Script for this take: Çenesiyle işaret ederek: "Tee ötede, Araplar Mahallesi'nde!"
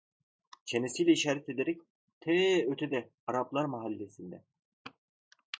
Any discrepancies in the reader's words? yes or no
no